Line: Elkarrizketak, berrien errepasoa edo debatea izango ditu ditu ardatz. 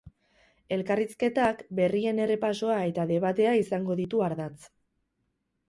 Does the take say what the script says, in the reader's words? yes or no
no